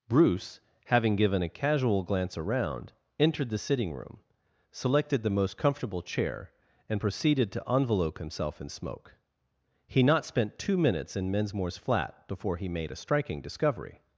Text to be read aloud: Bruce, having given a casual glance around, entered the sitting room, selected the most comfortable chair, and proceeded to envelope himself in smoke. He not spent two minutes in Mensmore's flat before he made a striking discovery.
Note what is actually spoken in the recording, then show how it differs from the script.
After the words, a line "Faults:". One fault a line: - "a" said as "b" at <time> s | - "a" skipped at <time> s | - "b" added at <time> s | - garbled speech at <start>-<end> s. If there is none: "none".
Bruce, having given a casual glance around, entered the sitting room, selected the most comfortable chair, and proceeded to envelope himself in smoke. He not spent two minutes in Mensmore's flat before he made a striking discovery.
Faults:
none